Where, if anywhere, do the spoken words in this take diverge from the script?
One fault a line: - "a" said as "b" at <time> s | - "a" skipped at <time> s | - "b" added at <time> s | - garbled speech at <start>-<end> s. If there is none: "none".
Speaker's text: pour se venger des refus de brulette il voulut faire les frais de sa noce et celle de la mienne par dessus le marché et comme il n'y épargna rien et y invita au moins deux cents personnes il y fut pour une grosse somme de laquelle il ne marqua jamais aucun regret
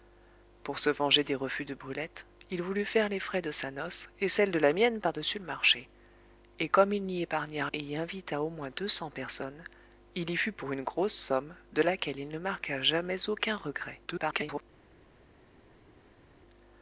- "rien" skipped at 7.7 s
- garbled speech at 14.1-14.6 s